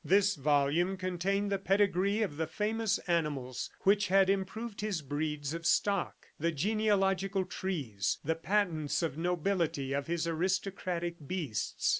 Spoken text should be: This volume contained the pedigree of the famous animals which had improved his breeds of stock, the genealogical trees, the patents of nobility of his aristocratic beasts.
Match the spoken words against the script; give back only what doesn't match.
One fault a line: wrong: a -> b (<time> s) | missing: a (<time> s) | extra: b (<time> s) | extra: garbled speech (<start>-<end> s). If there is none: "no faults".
no faults